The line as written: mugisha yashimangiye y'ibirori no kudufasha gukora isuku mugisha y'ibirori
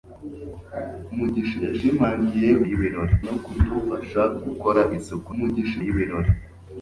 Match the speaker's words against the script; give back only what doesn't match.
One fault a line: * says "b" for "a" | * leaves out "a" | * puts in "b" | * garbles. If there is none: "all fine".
all fine